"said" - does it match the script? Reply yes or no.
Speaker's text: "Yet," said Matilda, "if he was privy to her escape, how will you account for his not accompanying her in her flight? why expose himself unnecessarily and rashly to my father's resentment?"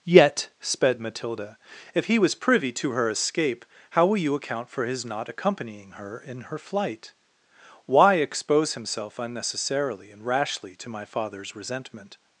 no